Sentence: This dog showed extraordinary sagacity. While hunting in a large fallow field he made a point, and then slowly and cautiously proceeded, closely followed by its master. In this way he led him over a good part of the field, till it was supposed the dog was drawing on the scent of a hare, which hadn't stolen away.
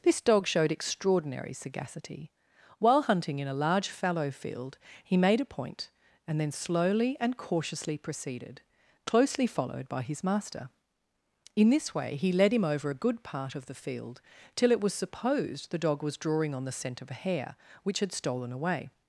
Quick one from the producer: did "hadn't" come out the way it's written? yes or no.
no